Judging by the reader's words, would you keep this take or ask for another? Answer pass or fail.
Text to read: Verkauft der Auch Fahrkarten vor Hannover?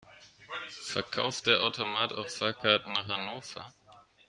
fail